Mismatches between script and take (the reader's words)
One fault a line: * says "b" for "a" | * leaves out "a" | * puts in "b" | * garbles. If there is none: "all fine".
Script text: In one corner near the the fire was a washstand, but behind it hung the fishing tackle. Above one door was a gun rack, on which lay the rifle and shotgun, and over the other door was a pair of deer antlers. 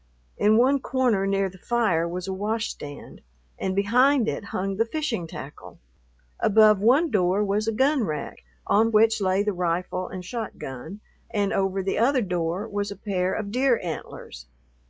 * leaves out "the"
* says "and" for "but"